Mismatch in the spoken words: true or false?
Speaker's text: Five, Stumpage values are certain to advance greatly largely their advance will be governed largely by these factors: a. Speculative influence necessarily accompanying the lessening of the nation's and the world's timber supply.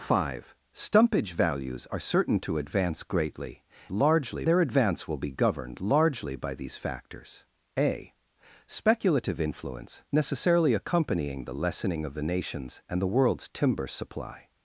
false